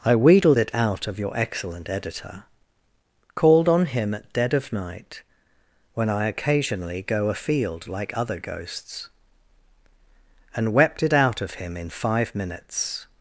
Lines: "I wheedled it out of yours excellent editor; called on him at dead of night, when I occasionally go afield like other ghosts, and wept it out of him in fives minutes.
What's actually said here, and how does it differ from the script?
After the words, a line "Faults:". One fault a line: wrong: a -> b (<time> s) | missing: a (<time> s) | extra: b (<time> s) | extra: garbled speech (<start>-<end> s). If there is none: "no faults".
"I wheedled it out of your excellent editor; called on him at dead of night, when I occasionally go afield like other ghosts, and wept it out of him in five minutes.
Faults:
wrong: yours -> your (1.2 s)
wrong: fives -> five (11.9 s)